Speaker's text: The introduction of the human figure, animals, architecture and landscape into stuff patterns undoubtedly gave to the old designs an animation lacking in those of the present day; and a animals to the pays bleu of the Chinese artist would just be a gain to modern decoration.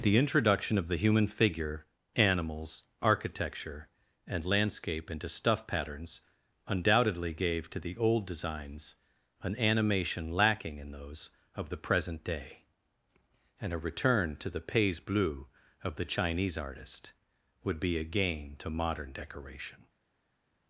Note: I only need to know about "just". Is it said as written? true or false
false